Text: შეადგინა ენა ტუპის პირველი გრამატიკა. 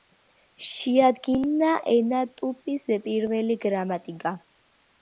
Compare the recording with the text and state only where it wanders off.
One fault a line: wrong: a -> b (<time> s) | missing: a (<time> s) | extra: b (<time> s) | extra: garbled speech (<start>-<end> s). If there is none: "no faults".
no faults